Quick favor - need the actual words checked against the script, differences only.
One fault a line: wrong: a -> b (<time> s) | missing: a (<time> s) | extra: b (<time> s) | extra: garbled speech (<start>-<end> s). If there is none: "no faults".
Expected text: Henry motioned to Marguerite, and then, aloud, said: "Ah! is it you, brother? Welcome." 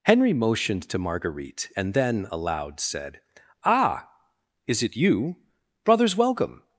wrong: brother -> brothers (5.8 s)